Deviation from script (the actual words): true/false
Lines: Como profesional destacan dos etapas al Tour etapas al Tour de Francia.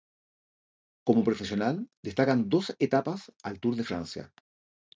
true